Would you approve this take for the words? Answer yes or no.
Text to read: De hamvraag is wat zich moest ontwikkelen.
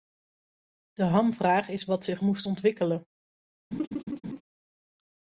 yes